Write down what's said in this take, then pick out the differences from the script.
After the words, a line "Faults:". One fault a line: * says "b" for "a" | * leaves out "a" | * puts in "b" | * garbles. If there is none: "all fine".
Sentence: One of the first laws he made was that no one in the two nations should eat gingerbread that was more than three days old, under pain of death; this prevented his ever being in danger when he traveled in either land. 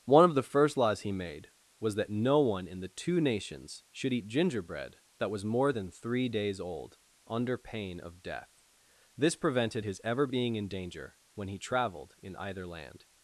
One of the first laws he made was that no one in the two nations should eat gingerbread that was more than three days old, under pain of death; this prevented his ever being in danger when he traveled in either land.
Faults:
all fine